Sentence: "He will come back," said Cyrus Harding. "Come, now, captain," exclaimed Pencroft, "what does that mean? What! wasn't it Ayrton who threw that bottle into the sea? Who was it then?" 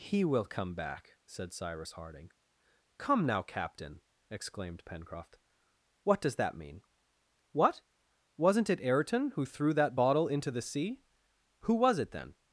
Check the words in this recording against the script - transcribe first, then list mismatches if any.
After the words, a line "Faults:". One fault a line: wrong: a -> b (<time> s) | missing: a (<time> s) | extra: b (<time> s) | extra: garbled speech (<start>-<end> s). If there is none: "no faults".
"He will come back," said Cyrus Harding. "Come, now, captain," exclaimed Pencroft, "what does that mean? What! wasn't it Ayrton who threw that bottle into the sea? Who was it then?"
Faults:
no faults